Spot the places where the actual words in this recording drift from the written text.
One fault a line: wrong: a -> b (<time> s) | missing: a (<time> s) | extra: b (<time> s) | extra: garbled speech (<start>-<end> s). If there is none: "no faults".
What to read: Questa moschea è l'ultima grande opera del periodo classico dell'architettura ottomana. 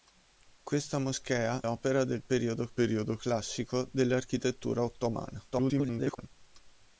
missing: è l'ultima grande (1.6 s)
extra: periodo (2.7 s)
extra: garbled speech (5.5-6.3 s)